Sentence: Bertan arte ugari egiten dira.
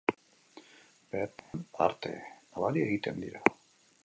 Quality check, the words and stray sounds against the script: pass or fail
fail